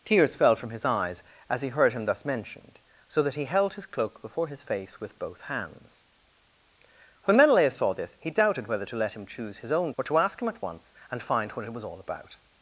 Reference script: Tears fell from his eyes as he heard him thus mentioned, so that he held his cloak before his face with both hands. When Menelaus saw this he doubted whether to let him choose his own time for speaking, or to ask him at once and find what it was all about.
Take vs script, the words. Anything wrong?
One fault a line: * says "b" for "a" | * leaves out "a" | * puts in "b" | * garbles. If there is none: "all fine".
* leaves out "time for speaking"